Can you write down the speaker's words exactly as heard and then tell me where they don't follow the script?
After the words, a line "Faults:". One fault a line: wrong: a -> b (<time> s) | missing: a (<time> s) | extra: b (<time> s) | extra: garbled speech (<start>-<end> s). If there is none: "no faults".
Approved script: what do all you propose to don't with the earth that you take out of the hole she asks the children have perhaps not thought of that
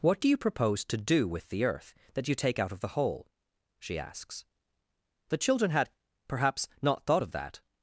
what do you propose to do with the earth that you take out of the hole she asks the children had perhaps not thought of that
Faults:
missing: all (0.3 s)
wrong: don't -> do (1.0 s)
wrong: have -> had (5.7 s)